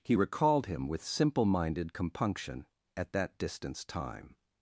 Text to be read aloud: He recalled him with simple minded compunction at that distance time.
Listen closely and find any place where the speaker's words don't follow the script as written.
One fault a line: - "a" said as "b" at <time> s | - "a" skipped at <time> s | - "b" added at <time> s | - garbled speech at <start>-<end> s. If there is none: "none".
none